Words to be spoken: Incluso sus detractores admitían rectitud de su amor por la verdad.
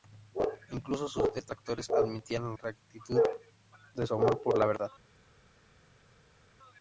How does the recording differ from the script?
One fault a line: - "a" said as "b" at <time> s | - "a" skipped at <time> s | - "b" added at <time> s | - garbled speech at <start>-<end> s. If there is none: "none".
none